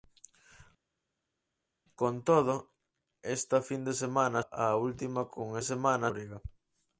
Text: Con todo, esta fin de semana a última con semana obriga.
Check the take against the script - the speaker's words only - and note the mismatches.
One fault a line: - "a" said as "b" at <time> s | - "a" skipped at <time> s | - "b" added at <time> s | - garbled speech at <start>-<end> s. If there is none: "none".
none